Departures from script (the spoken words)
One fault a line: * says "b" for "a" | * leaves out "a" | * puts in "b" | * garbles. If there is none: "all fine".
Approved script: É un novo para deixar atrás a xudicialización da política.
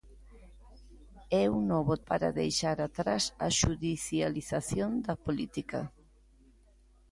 all fine